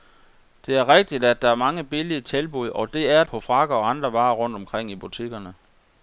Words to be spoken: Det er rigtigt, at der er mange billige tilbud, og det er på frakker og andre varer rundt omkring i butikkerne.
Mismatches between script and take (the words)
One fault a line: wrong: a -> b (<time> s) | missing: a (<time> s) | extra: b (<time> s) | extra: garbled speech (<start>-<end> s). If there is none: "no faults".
no faults